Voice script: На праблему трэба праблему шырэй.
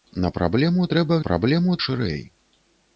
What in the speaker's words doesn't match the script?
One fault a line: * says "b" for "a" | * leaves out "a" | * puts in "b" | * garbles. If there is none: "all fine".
all fine